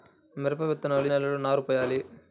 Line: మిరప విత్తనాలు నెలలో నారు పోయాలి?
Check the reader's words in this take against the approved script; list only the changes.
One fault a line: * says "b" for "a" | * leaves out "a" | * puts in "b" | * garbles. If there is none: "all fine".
all fine